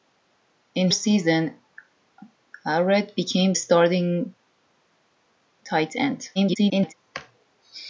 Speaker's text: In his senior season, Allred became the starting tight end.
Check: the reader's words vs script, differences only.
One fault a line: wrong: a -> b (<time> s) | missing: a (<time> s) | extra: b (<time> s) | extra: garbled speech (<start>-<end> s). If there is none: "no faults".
missing: his senior (0.9 s)
missing: the (3.5 s)
extra: garbled speech (6.3-6.9 s)